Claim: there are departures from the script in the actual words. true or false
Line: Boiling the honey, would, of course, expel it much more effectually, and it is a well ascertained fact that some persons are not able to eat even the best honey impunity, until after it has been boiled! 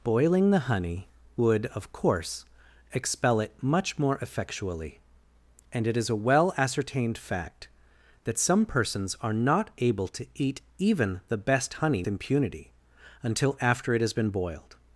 false